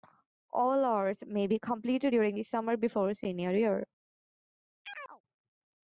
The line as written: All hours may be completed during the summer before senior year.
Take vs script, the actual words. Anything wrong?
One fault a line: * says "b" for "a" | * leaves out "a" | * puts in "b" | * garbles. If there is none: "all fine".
all fine